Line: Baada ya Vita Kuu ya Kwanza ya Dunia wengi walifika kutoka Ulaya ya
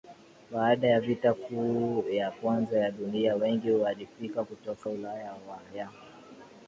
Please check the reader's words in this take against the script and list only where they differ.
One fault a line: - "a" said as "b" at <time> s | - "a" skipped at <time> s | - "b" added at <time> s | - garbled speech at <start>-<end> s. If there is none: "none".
none